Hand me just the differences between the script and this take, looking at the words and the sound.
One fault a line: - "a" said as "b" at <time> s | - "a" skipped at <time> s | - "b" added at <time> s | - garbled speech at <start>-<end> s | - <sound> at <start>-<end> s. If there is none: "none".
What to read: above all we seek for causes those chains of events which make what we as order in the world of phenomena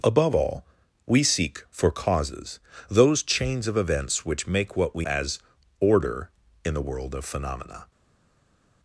none